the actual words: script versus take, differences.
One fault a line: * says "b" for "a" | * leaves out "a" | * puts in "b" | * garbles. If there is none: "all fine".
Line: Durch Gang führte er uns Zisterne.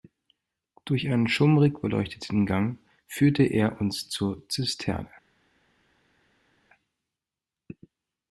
* puts in "einen schummrig beleuchteten"
* puts in "zur"